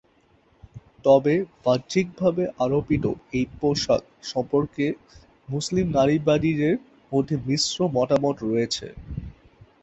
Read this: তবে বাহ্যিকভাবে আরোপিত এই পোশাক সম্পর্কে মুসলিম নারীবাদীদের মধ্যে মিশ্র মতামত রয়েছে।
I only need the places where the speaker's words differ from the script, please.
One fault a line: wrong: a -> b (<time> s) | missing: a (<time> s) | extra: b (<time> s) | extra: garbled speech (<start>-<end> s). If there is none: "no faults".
no faults